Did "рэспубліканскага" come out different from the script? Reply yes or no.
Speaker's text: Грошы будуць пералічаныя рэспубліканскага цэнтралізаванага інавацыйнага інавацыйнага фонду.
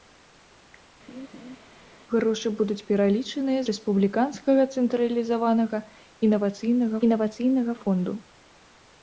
no